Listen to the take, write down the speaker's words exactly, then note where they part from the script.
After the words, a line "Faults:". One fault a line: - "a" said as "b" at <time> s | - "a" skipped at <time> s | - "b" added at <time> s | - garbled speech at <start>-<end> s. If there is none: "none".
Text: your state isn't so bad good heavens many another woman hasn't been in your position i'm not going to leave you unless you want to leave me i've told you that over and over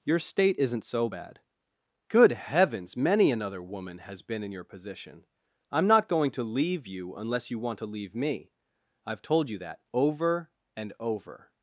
your state isn't so bad good heavens many another woman has been in your position i'm not going to leave you unless you want to leave me i've told you that over and over
Faults:
- "hasn't" said as "has" at 4.0 s